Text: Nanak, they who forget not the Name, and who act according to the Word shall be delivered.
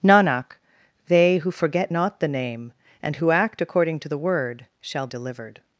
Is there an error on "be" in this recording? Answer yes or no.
yes